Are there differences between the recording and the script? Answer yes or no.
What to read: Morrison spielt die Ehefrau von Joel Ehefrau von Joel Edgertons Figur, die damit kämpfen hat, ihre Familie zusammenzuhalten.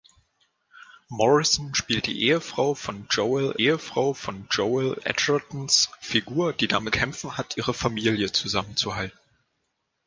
no